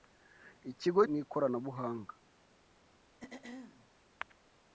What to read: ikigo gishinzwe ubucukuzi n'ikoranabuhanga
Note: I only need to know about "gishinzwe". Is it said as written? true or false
false